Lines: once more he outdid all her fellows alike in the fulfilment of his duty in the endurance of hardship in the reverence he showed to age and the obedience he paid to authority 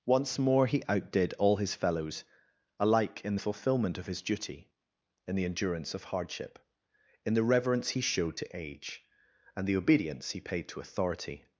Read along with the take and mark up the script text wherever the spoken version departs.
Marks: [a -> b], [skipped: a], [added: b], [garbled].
once more he outdid all [her -> his] fellows alike in the fulfilment of his duty in the endurance of hardship in the reverence he showed to age and the obedience he paid to authority